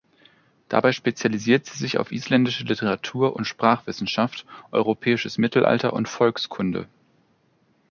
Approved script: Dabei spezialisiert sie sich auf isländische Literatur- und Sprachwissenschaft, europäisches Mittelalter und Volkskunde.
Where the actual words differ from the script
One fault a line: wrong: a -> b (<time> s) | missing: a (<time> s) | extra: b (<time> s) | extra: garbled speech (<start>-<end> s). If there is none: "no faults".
no faults